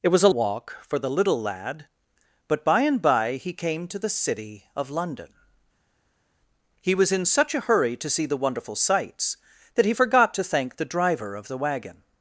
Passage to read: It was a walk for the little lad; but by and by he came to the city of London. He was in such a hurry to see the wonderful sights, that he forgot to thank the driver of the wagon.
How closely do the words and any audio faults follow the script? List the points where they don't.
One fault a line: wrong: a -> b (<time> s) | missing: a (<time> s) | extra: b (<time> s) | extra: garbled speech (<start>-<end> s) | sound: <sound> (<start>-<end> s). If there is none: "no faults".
no faults